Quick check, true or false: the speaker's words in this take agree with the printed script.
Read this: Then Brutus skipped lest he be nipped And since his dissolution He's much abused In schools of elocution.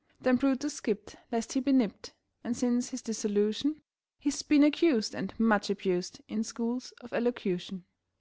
false